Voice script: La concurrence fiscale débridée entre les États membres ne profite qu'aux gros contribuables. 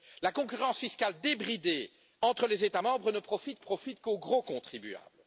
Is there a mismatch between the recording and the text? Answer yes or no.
yes